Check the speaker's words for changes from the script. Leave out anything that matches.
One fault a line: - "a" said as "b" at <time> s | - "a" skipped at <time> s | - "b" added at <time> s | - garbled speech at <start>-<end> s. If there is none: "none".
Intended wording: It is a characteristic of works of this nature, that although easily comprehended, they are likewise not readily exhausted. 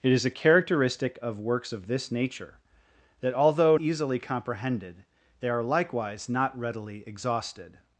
none